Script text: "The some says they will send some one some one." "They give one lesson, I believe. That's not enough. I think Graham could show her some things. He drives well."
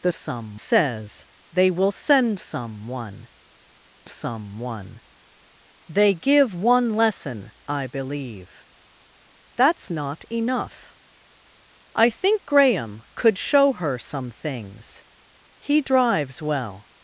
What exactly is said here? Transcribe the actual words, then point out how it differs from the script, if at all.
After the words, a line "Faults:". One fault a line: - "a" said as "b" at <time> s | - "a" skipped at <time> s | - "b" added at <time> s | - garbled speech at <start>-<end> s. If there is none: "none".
"The some says they will send some one some one." "They give one lesson, I believe. That's not enough. I think Graham could show her some things. He drives well."
Faults:
none